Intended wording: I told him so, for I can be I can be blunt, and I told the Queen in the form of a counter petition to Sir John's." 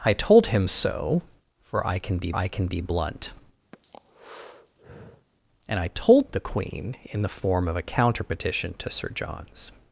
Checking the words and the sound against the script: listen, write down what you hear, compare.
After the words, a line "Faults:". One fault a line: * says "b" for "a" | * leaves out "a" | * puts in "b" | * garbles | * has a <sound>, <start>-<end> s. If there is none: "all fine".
I told him so, for I can be I can be blunt, and I told the Queen in the form of a counter petition to Sir John's."
Faults:
* has a breath, 3.7-5.3 s